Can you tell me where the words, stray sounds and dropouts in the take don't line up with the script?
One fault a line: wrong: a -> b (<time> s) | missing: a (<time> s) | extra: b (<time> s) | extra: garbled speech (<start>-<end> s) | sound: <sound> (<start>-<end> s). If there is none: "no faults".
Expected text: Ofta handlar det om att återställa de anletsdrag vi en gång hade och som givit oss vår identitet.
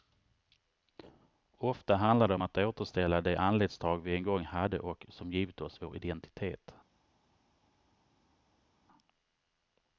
no faults